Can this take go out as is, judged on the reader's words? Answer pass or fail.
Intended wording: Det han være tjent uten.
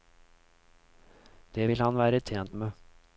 fail